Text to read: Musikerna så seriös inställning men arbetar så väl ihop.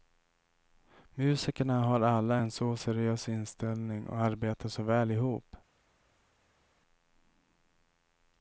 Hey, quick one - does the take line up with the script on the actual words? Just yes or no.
no